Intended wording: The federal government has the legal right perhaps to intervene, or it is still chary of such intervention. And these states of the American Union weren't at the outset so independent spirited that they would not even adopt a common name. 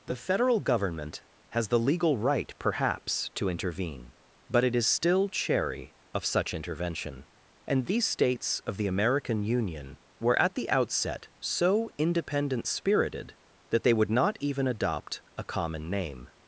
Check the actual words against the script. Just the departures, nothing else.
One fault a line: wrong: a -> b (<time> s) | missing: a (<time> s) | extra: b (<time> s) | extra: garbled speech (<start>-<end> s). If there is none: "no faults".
wrong: or -> but (4.5 s)
wrong: weren't -> were (10.2 s)